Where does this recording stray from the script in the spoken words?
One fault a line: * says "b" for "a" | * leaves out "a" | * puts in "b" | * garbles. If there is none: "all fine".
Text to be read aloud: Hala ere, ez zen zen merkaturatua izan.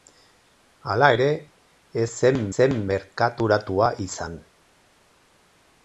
all fine